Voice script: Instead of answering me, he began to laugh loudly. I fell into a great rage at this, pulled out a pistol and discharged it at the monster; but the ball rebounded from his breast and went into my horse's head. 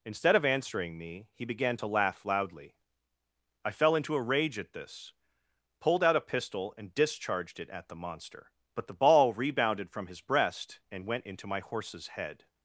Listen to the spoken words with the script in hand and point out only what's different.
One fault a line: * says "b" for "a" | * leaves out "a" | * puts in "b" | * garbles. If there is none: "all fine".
* leaves out "great"